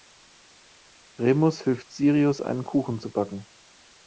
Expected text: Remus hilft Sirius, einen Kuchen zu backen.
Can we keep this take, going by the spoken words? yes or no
yes